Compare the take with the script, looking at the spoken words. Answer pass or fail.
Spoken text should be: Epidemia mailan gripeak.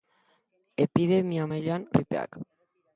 pass